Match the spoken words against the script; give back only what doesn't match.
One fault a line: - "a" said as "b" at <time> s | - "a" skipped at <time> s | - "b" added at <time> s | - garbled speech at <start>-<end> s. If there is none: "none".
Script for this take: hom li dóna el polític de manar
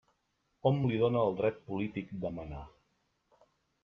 - "dret" added at 1.4 s